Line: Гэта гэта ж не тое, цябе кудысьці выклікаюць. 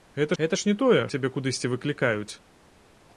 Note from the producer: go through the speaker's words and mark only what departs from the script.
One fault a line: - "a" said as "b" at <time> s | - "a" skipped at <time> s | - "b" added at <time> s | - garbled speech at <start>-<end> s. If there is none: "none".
none